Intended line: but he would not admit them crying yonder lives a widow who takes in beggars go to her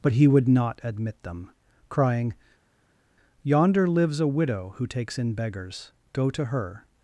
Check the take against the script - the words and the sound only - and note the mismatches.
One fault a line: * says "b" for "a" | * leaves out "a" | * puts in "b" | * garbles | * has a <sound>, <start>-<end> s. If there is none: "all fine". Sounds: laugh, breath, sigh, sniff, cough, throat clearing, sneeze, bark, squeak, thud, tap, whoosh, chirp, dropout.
all fine